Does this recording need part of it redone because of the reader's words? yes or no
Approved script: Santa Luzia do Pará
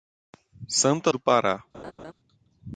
yes